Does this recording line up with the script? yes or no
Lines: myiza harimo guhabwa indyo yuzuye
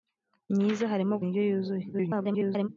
no